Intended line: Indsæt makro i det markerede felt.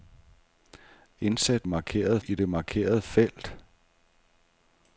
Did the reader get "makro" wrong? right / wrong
wrong